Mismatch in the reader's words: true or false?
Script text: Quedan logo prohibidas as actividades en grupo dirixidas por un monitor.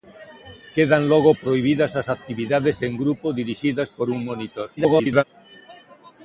true